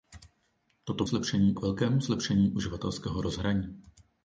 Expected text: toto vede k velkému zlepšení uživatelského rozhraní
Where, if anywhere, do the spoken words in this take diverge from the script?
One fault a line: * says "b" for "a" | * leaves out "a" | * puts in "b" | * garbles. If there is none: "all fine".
* says "zlepšení" for "vede"